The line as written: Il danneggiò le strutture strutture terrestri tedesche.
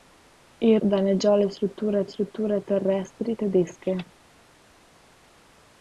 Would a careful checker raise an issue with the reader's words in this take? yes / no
no